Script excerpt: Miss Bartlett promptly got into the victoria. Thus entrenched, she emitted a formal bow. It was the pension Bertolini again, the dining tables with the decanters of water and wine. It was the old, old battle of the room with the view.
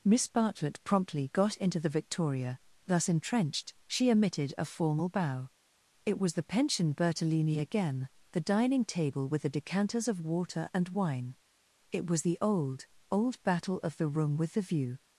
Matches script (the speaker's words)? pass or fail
fail